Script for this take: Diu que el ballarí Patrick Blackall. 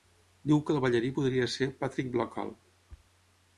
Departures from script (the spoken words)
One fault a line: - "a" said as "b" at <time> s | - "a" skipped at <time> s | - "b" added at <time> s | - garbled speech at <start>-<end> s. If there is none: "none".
- "podria ser" added at 1.2 s